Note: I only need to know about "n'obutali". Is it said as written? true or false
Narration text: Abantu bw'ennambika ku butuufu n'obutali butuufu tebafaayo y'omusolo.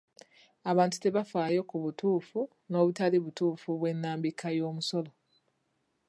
true